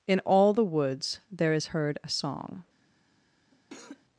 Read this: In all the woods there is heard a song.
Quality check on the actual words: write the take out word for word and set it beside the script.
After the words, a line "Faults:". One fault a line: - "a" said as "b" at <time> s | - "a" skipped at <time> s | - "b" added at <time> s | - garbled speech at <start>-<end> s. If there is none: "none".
In all the woods there is heard a song.
Faults:
none